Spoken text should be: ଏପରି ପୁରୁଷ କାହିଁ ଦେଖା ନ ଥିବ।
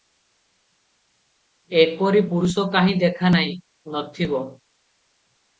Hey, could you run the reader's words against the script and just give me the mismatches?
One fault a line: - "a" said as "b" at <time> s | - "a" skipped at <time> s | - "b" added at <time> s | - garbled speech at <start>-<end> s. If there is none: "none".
- "ନାହିଁ" added at 3.3 s